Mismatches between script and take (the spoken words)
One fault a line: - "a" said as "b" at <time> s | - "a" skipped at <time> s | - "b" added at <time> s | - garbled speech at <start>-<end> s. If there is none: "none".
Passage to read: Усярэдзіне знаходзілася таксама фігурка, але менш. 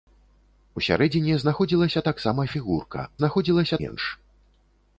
- "але" said as "знаходзілася" at 3.2 s